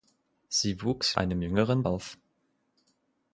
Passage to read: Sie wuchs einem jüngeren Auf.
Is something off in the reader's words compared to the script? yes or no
no